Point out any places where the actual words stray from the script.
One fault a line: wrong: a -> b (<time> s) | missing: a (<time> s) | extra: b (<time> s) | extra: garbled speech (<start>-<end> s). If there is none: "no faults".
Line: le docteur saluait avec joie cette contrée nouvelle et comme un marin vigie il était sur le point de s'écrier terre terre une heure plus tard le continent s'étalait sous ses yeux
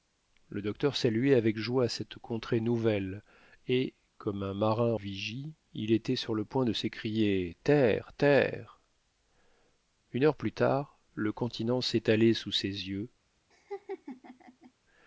no faults